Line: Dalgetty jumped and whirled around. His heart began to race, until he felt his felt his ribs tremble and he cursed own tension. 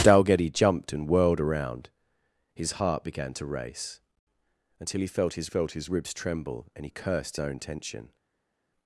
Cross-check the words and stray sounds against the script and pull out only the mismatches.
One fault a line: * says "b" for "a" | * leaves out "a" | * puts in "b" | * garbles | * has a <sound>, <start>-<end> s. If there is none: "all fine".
all fine